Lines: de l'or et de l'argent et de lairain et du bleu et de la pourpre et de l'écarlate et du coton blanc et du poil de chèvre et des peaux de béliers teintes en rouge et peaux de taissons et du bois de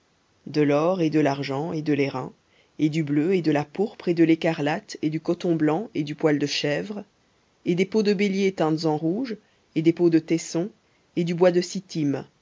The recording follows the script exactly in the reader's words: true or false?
false